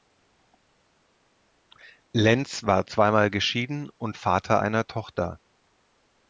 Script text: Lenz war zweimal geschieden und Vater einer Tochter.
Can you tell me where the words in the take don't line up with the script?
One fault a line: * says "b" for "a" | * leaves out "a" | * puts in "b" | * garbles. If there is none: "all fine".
all fine